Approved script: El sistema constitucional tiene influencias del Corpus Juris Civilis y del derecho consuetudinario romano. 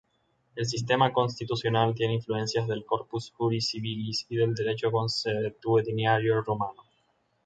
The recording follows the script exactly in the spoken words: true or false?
true